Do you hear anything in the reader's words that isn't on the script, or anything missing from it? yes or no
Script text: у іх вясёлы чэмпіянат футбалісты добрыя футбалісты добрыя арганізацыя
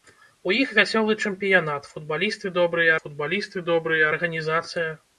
no